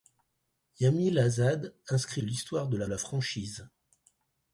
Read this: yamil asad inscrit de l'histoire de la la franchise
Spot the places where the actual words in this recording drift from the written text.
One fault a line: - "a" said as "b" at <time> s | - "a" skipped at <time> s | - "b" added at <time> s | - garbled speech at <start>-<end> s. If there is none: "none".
none